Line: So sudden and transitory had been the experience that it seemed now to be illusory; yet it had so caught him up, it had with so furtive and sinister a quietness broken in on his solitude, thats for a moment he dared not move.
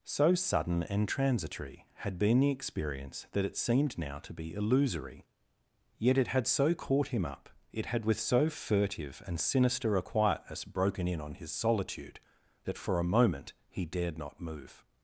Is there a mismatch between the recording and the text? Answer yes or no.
yes